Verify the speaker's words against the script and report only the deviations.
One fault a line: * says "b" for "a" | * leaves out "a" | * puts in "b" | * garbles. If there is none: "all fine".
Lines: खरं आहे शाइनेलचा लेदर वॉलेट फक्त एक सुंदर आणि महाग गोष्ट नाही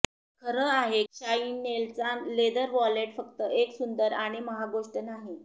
all fine